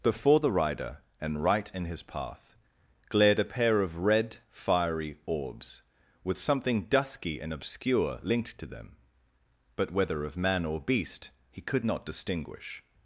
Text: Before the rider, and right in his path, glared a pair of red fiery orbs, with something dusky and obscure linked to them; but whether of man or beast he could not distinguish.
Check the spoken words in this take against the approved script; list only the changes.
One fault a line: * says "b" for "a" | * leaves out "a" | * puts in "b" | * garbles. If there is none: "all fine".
all fine